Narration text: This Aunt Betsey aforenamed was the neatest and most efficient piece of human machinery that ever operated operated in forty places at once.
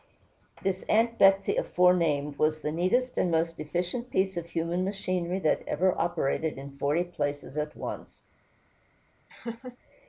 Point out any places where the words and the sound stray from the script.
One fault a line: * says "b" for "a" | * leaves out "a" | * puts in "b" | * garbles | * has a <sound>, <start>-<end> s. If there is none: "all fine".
* leaves out "operated"
* has a laugh, 9.3-9.8 s